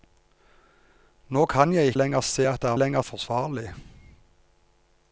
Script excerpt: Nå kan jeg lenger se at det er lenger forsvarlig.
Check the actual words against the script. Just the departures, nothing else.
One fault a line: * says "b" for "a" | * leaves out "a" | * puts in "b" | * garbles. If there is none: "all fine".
all fine